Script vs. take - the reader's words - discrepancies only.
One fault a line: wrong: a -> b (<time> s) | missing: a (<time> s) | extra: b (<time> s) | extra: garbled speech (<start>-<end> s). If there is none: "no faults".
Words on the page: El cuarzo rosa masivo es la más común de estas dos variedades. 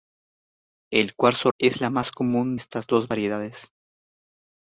missing: rosa masivo (1.5 s)
missing: de (2.5 s)